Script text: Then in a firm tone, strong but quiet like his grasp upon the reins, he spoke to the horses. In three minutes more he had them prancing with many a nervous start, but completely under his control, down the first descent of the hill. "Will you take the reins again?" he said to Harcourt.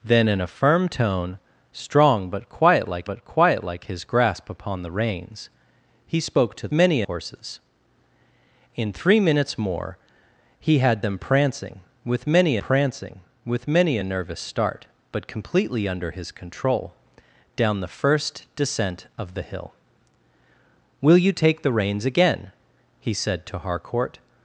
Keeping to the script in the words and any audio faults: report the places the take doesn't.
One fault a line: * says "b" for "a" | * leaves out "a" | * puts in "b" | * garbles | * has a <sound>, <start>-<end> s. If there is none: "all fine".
* puts in "but quiet like"
* says "many" for "the"
* puts in "prancing with many"